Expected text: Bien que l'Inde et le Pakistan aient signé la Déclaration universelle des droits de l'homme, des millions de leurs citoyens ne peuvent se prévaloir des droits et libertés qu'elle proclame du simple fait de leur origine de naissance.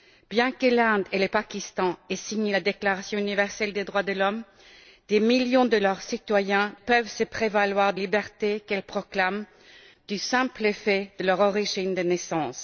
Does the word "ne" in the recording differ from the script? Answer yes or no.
yes